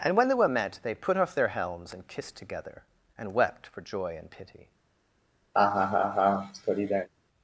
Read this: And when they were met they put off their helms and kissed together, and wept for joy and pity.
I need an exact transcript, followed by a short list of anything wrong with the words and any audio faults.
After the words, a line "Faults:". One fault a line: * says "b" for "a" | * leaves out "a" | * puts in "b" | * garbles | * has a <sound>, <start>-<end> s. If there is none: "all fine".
And when they were met they put off their helms and kissed together, and wept for joy and pity.
Faults:
* has a laugh, 5.5-7.1 s